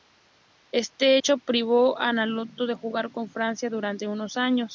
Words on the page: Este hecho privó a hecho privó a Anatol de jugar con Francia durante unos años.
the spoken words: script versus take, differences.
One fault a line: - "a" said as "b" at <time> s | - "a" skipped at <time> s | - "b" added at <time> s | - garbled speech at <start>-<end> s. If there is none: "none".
- "hecho privó a" skipped at 2.1 s